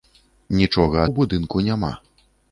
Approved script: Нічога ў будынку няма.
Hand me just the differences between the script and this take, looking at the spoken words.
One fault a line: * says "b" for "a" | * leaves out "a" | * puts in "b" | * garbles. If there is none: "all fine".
all fine